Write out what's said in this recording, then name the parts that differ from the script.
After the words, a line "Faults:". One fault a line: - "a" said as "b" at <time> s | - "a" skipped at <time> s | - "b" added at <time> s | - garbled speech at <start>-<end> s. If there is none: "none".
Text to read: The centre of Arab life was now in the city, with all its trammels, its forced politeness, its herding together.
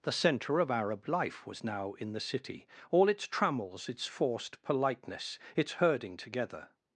The centre of Arab life was now in the city, all its trammels, its forced politeness, its herding together.
Faults:
- "with" skipped at 2.7 s